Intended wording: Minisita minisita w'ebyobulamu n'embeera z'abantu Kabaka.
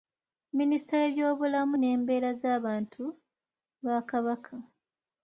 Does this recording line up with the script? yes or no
no